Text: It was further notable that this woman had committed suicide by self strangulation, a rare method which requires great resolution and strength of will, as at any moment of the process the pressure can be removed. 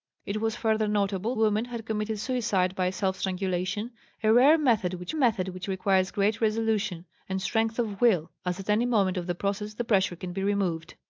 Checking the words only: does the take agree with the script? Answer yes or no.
no